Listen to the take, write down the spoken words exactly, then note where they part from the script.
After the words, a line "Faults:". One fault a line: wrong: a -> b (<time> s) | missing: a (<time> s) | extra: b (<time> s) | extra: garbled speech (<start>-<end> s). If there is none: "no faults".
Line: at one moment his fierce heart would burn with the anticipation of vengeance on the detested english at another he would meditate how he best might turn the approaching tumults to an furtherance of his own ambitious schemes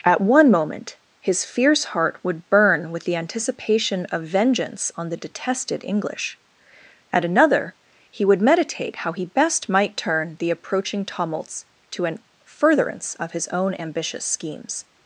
at one moment his fierce heart would burn with the anticipation of vengeance on the detested english at another he would meditate how he best might turn the approaching tumults to an furtherance of his own ambitious schemes
Faults:
no faults